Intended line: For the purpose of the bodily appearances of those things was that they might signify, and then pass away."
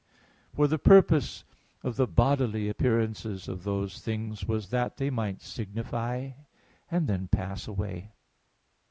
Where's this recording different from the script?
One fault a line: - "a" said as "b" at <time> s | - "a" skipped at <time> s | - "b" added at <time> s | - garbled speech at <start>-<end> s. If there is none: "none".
none